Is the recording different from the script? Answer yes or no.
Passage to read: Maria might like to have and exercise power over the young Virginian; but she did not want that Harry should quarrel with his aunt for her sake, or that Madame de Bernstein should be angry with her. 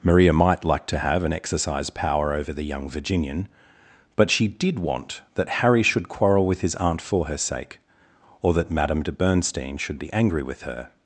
yes